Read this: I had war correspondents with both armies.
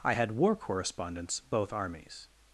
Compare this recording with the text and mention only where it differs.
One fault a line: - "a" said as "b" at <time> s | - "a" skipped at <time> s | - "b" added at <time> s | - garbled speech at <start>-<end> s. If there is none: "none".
- "with" skipped at 1.4 s